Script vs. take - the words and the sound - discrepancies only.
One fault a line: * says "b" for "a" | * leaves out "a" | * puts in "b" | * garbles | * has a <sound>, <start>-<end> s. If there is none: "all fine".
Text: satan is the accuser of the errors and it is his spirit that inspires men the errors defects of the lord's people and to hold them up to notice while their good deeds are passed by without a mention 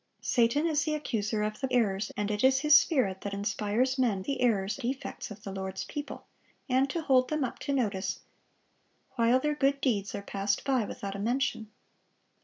all fine